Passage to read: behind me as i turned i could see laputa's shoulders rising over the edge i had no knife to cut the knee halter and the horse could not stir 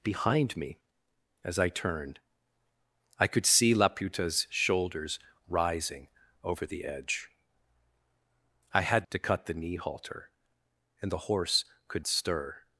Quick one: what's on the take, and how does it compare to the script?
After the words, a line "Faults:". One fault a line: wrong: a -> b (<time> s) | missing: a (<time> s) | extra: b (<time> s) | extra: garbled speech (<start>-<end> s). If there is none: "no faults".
behind me as i turned i could see laputa's shoulders rising over the edge i had to cut the knee halter and the horse could stir
Faults:
missing: no knife (9.1 s)
missing: not (12.0 s)